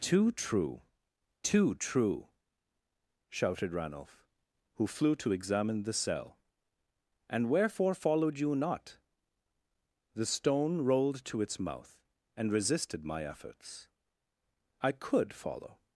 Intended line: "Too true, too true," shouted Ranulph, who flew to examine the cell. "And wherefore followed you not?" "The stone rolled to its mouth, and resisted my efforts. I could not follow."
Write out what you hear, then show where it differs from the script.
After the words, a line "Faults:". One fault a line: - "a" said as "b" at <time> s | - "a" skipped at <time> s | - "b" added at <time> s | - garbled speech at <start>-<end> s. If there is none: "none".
"Too true, too true," shouted Ranulph, who flew to examine the cell. "And wherefore followed you not?" "The stone rolled to its mouth, and resisted my efforts. I could follow."
Faults:
- "not" skipped at 15.3 s